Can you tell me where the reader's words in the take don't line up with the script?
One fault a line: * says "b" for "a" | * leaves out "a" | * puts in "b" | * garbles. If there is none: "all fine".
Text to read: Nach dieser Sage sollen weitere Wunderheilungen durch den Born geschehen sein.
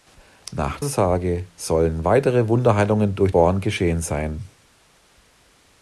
* leaves out "dieser"
* leaves out "den"